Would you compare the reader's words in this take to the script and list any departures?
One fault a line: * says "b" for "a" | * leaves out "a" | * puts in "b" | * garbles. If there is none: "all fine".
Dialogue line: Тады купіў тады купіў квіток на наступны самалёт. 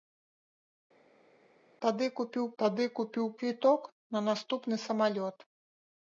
all fine